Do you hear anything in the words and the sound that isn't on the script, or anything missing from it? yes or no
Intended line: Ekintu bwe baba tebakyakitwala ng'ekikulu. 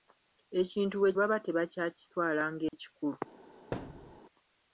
yes